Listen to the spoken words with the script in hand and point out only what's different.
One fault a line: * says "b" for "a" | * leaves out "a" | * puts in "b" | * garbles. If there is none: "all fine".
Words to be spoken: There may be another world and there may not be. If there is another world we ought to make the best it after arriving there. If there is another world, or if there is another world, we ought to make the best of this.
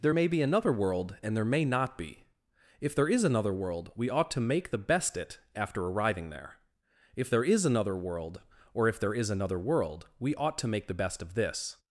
all fine